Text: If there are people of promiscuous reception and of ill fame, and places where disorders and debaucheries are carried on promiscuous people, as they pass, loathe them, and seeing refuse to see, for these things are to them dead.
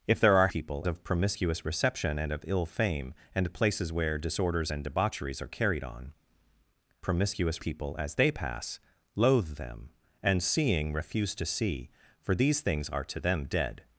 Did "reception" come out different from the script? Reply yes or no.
no